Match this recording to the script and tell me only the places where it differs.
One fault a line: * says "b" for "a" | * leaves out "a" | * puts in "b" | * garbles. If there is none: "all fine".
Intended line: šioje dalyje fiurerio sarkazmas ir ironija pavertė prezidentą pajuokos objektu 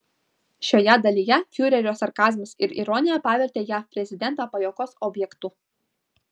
* puts in "jav"